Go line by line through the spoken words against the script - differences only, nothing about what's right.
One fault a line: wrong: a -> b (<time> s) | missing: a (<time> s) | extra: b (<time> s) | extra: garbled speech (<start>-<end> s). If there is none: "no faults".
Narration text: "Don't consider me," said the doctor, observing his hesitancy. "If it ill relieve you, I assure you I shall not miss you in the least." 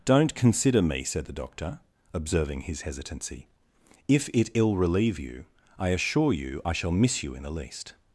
missing: not (6.9 s)